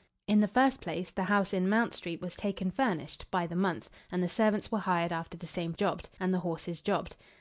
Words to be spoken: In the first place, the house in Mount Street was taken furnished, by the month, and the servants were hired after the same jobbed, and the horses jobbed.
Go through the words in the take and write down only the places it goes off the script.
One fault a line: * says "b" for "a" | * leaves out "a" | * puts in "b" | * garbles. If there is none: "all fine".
all fine